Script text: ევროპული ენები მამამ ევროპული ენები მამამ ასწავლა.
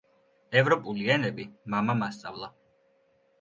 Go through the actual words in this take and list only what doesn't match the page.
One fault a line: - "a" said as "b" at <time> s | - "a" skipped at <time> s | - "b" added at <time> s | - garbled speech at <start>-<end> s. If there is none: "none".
- "ევროპული ენები მამამ" skipped at 2.0 s